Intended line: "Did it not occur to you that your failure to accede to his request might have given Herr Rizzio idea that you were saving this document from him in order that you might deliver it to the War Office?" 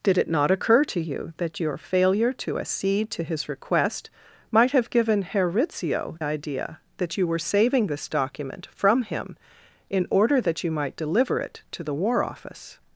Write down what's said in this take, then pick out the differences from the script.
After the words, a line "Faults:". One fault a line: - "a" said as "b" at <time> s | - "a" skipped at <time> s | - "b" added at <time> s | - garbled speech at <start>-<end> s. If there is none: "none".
"Did it not occur to you that your failure to accede to his request might have given Herr Rizzio idea that you were saving this document from him in order that you might deliver it to the War Office?"
Faults:
none